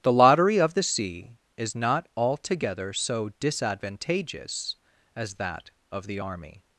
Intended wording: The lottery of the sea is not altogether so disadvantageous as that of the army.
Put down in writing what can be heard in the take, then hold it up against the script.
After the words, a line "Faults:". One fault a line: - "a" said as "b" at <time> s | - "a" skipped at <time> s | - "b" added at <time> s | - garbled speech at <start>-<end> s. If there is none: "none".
The lottery of the sea is not altogether so disadvantageous as that of the army.
Faults:
none